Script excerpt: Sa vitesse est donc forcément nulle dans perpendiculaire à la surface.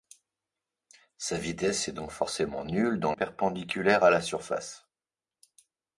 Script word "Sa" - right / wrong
right